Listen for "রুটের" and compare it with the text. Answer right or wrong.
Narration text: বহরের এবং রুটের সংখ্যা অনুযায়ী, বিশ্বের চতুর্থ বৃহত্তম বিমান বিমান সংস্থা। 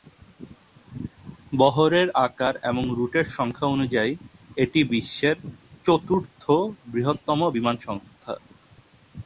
right